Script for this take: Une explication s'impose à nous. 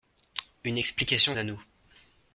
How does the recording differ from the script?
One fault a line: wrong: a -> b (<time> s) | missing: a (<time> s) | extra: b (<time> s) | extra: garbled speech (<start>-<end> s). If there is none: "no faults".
missing: s'impose (1.4 s)